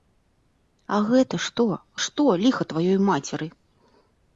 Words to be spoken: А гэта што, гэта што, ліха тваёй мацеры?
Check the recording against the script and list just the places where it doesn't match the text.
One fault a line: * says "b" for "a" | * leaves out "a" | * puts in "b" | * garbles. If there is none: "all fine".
* leaves out "гэта"